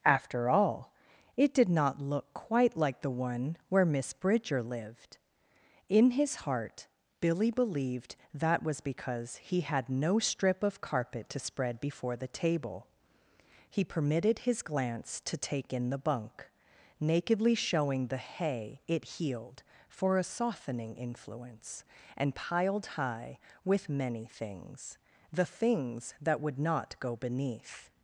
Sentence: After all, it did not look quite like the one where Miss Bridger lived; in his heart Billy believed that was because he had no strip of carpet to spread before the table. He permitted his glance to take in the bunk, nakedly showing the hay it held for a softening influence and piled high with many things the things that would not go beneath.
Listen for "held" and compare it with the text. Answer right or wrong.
wrong